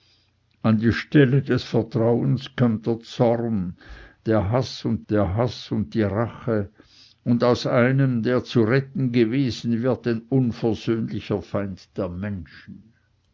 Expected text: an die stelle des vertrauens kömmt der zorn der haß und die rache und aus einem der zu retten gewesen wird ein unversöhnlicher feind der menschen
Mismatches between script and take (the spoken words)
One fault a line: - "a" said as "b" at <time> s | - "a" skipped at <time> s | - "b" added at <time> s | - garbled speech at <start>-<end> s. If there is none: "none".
- "der haß und" added at 5.1 s